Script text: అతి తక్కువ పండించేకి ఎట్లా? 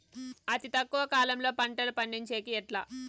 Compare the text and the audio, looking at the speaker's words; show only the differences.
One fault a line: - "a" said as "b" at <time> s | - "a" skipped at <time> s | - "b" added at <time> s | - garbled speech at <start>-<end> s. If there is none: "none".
- "కాలంలో పంటలు" added at 1.1 s